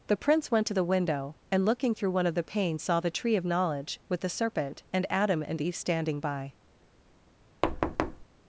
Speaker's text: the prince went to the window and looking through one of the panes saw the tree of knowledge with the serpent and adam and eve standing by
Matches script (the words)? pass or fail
pass